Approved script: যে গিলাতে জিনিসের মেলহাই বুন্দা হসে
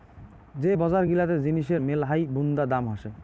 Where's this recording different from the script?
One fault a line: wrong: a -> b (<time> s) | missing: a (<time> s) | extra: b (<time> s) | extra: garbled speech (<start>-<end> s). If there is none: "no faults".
extra: বজার (0.7 s)
extra: দাম (2.6 s)